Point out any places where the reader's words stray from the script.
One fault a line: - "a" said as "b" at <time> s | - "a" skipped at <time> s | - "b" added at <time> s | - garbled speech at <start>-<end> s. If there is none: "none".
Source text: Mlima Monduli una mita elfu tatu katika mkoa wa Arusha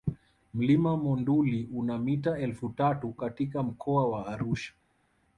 none